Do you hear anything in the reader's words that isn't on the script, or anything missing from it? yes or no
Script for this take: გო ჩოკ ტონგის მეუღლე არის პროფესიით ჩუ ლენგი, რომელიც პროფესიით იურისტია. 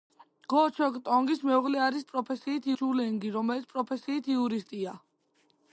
no